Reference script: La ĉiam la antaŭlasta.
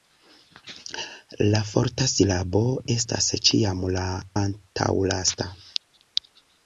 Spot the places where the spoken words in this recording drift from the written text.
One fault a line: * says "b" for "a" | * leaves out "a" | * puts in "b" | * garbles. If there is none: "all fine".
* puts in "forta silabo estas"